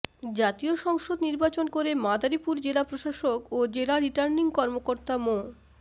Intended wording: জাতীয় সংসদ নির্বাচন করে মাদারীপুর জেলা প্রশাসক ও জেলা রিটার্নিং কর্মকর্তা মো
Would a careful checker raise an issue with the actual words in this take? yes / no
no